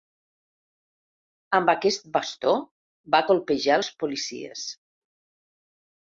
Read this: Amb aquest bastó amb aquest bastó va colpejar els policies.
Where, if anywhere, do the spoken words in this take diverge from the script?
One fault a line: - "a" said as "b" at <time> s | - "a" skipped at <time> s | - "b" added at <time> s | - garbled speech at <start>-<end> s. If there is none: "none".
- "amb aquest bastó" skipped at 2.5 s